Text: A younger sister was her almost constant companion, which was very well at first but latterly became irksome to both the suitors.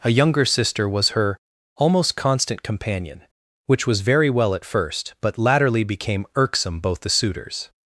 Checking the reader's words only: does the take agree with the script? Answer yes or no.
no